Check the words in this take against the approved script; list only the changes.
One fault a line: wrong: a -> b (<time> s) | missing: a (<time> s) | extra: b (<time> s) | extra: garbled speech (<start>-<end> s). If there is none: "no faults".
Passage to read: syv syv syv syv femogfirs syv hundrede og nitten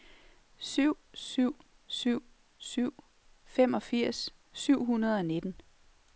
no faults